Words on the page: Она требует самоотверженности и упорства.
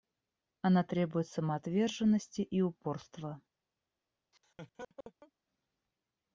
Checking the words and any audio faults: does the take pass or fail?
fail